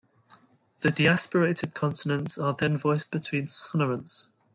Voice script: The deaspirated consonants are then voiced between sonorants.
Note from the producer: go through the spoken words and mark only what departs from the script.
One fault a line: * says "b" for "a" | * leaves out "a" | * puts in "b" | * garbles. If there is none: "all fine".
all fine